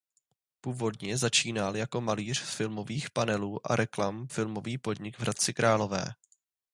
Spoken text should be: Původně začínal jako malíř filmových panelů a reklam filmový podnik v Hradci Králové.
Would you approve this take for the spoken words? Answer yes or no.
yes